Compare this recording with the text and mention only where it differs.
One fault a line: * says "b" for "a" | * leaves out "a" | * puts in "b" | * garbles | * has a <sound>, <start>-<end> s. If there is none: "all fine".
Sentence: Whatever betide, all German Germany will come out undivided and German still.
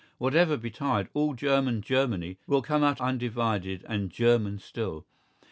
all fine